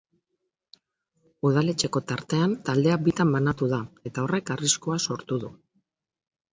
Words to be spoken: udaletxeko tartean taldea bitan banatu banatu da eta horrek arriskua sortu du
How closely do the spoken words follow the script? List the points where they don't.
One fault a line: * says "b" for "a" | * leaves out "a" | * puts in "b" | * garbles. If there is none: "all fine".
* leaves out "banatu"